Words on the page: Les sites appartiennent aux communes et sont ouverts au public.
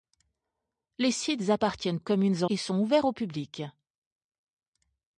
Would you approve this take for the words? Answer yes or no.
yes